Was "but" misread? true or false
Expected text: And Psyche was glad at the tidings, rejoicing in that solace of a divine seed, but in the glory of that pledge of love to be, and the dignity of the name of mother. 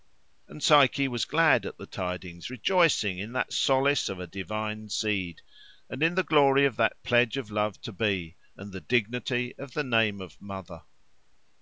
true